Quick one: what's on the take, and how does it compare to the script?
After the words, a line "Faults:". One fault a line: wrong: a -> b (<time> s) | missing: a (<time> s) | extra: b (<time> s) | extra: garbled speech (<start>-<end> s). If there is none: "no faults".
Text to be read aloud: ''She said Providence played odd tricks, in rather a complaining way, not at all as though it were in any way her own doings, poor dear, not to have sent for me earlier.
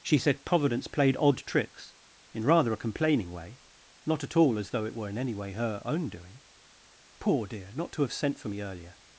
''She said Providence played odd tricks, in rather a complaining way, not at all as though it were in any way her own doing, poor dear, not to have sent for me earlier.
Faults:
wrong: doings -> doing (6.1 s)